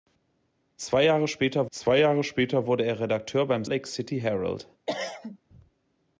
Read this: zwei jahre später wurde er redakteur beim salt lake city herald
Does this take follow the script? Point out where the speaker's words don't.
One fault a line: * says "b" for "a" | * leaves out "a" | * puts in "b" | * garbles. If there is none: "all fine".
* puts in "zwei jahre später"
* leaves out "salt"